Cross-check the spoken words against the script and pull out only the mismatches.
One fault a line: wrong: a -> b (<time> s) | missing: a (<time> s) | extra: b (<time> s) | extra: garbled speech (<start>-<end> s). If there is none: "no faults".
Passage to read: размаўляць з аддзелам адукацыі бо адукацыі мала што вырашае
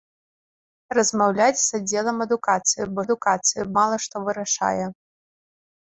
no faults